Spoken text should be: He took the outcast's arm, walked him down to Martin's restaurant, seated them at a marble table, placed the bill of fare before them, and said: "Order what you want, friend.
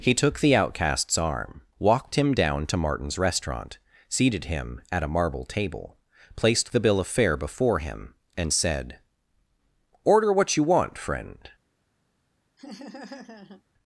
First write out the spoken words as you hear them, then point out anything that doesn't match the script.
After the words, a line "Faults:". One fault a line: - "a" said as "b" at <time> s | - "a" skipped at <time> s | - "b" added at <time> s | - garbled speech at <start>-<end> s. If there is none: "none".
He took the outcast's arm, walked him down to Martin's restaurant, seated him at a marble table, placed the bill of fare before him, and said: "Order what you want, friend.
Faults:
- "them" said as "him" at 4.5 s
- "them" said as "him" at 7.8 s